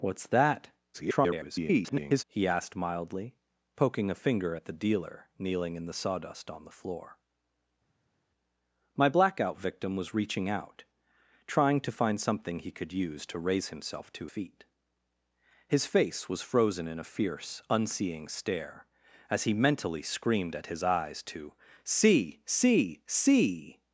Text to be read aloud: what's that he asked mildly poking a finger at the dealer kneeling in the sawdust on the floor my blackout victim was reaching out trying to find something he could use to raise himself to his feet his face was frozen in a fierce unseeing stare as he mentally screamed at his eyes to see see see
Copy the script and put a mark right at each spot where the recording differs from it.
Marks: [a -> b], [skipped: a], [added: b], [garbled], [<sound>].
what's that [garbled] he asked mildly poking a finger at the dealer kneeling in the sawdust on the floor my blackout victim was reaching out trying to find something he could use to raise himself to [skipped: his] feet his face was frozen in a fierce unseeing stare as he mentally screamed at his eyes to see see see